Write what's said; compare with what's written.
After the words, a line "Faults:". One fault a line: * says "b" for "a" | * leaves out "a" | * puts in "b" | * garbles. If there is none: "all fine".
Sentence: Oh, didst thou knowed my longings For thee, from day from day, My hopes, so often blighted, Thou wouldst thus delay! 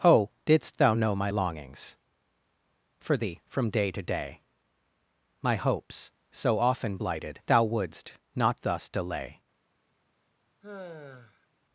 Oh, didst thou know my longings For thee, from day to day, My hopes, so often blighted, Thou wouldst not thus delay!
Faults:
* says "know" for "knowed"
* says "to" for "from"
* puts in "not"